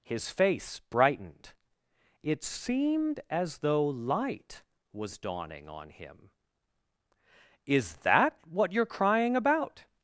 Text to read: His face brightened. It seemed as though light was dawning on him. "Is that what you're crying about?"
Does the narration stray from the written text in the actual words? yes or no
no